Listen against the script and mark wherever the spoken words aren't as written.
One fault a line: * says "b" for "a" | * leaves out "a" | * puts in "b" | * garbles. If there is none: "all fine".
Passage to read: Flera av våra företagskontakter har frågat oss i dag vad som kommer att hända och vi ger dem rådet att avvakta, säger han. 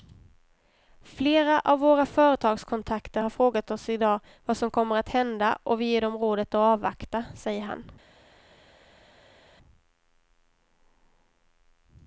all fine